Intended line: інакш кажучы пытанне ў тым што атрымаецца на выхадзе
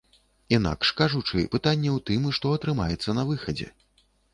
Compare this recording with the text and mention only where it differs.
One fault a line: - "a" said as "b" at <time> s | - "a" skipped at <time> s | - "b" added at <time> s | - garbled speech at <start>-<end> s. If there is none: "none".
none